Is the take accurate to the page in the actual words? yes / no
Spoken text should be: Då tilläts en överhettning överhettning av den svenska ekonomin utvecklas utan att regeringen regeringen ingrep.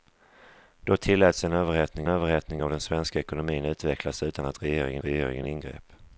yes